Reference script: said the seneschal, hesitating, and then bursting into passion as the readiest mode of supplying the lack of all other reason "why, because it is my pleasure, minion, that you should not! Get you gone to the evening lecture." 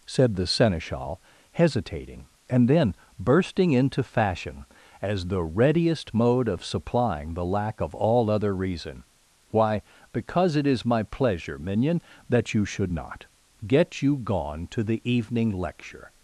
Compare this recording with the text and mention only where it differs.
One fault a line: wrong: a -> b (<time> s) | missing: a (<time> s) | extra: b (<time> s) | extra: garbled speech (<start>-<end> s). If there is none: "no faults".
wrong: passion -> fashion (4.0 s)